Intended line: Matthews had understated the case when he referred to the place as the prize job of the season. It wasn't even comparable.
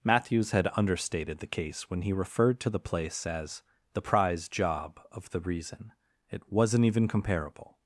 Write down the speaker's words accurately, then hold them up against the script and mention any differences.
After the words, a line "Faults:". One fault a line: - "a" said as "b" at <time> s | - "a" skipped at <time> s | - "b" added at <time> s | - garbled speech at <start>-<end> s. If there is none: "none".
Matthews had understated the case when he referred to the place as the prize job of the reason. It wasn't even comparable.
Faults:
- "season" said as "reason" at 5.4 s